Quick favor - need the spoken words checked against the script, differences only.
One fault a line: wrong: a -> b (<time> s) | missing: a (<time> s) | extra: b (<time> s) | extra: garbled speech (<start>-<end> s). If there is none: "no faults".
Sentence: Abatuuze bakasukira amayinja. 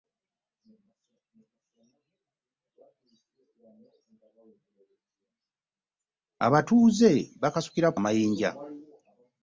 no faults